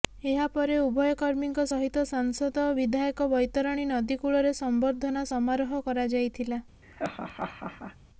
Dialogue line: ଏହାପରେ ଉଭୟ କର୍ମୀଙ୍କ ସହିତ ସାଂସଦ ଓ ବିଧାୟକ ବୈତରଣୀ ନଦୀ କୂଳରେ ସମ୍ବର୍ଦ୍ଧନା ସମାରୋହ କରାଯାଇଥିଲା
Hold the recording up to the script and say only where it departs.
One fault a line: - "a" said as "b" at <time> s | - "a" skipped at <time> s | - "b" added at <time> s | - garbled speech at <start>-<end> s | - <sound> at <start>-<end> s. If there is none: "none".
- laugh at 6.8-8.0 s